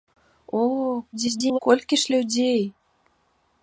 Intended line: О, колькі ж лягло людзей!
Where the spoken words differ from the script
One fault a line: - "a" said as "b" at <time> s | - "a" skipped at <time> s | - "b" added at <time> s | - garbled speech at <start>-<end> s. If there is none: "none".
- garbled speech at 1.1-1.6 s
- "лягло" skipped at 2.1 s